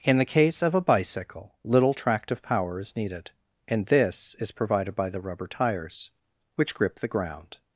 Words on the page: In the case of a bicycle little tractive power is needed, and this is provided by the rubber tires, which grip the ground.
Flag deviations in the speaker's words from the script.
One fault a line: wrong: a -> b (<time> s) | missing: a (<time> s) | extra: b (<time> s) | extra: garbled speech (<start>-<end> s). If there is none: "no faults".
no faults